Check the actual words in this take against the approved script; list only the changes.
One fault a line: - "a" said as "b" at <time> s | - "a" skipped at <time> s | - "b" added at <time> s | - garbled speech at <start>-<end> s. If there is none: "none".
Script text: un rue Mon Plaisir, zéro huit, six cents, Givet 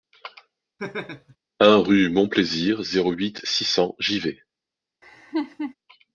none